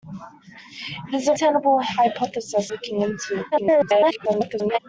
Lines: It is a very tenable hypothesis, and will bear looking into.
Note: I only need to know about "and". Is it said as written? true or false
false